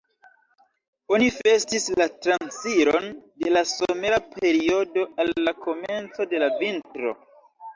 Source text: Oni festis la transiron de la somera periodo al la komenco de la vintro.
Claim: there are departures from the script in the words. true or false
false